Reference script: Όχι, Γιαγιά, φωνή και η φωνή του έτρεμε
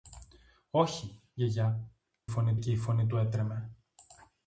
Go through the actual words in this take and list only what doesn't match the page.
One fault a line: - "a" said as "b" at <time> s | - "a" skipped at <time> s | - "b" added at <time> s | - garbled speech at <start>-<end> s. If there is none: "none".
none